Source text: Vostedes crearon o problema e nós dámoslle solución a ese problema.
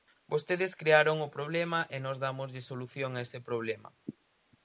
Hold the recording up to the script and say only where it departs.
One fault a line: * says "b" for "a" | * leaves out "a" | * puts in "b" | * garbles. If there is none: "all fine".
all fine